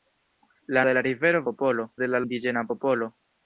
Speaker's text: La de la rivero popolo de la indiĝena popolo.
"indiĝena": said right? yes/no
yes